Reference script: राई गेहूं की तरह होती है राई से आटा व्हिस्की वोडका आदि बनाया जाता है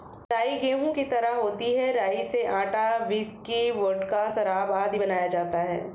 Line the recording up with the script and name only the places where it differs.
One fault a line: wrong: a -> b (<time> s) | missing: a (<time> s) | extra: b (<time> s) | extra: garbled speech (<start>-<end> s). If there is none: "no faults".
extra: शराब (4.3 s)